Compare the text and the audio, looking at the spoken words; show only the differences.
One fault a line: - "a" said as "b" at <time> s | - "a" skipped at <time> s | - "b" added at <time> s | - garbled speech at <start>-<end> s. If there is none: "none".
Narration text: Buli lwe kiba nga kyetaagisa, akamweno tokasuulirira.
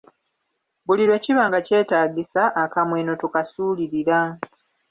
none